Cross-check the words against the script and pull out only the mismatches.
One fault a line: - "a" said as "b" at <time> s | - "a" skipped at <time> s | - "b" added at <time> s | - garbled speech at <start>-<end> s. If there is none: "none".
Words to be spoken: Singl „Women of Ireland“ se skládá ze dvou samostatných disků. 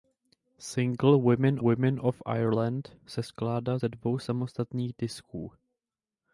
- "women" added at 1.6 s